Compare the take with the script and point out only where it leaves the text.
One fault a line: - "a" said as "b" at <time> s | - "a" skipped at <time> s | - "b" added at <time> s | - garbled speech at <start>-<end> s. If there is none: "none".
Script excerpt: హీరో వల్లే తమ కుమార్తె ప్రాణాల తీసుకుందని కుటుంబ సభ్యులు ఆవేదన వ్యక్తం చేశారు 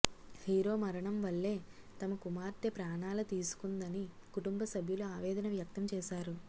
- "మరణం" added at 0.8 s